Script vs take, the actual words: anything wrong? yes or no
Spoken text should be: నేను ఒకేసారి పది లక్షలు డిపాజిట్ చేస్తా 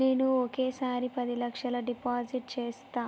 no